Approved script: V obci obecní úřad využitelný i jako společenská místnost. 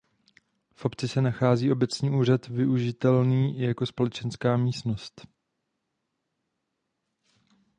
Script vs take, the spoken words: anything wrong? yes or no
yes